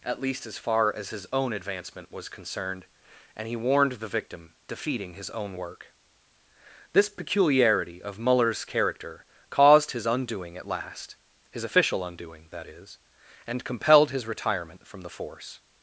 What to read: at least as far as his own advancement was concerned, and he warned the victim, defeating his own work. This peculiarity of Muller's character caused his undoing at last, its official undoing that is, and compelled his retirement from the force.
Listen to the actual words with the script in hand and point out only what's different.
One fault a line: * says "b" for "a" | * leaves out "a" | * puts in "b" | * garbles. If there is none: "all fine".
* says "his" for "its"